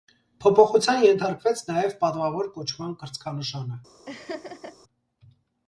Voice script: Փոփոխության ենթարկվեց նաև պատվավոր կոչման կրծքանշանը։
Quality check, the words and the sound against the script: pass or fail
fail